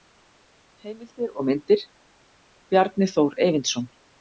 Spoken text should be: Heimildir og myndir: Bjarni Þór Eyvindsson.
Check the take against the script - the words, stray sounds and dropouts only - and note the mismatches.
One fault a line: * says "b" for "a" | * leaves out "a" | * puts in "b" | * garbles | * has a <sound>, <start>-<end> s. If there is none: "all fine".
all fine